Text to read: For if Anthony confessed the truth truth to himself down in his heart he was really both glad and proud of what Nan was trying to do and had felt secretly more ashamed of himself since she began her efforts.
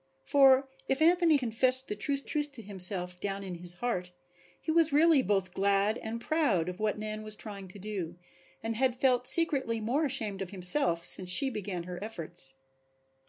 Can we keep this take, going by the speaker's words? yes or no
yes